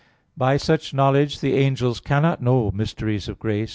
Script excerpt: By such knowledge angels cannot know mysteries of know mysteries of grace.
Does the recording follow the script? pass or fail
fail